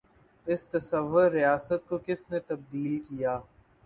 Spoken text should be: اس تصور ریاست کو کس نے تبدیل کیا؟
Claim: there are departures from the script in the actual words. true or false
false